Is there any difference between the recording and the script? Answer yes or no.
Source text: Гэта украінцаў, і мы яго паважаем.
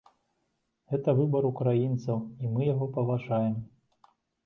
yes